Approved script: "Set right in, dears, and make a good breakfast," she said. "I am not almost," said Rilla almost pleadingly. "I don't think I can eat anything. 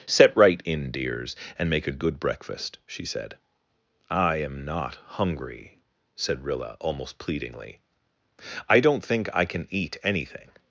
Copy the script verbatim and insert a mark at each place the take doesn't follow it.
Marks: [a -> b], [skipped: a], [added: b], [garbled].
"Set right in, dears, and make a good breakfast," she said. "I am not [almost," -> hungry] said Rilla almost pleadingly. "I don't think I can eat anything.